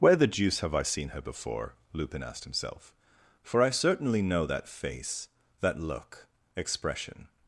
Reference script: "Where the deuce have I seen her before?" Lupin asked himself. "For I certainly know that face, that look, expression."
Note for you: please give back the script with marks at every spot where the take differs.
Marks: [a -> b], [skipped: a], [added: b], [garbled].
"Where the deuce have I seen her before?" Lupin asked himself. "For I certainly know that face, that look, expression."